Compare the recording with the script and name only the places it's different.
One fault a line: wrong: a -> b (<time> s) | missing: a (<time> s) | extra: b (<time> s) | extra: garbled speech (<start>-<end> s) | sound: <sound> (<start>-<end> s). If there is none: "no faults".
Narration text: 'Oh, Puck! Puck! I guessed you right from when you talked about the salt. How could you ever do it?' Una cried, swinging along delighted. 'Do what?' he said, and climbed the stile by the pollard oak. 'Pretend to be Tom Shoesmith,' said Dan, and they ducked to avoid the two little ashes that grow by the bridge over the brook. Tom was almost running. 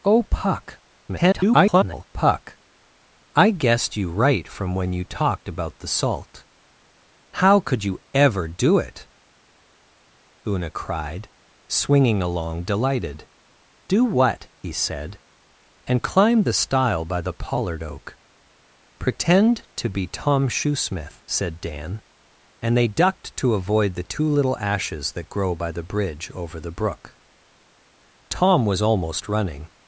extra: garbled speech (1.1-2.1 s)